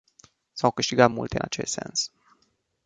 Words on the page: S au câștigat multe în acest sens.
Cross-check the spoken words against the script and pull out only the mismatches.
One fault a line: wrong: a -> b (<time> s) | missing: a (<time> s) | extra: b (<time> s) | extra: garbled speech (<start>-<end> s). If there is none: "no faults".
no faults